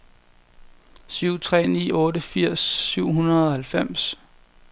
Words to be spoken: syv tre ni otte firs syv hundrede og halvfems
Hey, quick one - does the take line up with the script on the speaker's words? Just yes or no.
yes